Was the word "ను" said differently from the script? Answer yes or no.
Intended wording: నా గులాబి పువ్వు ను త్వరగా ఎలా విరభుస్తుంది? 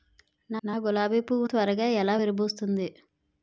yes